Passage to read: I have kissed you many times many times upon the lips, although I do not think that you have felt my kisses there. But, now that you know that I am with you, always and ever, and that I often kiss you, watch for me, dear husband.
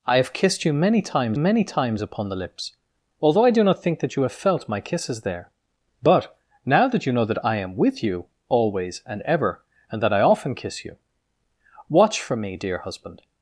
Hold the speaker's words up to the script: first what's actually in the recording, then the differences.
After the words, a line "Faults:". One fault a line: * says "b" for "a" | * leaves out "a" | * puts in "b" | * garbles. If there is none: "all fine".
I have kissed you many times many times upon the lips, although I do not think that you have felt my kisses there. But, now that you know that I am with you, always and ever, and that I often kiss you, watch for me, dear husband.
Faults:
all fine